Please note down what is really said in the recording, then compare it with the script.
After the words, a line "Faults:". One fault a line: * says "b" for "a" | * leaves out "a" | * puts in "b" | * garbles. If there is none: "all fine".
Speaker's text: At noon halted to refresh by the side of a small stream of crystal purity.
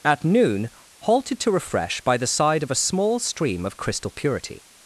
At noon halted to refresh by the side of a small stream of crystal purity.
Faults:
all fine